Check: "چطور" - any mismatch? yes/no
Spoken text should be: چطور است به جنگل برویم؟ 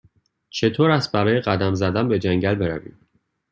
no